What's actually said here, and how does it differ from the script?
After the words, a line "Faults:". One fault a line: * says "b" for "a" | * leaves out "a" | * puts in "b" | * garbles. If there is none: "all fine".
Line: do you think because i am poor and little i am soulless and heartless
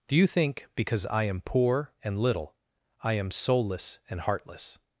do you think because i am poor and little i am soulless and heartless
Faults:
all fine